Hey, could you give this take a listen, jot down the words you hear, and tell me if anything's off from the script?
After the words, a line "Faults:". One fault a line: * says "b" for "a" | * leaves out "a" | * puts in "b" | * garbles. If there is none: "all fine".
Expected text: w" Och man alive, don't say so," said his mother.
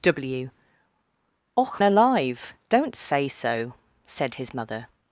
w" Och alive, don't say so," said his mother.
Faults:
* leaves out "man"